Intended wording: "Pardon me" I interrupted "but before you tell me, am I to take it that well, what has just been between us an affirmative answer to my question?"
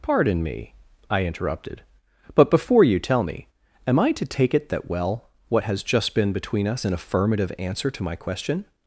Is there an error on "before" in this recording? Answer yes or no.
no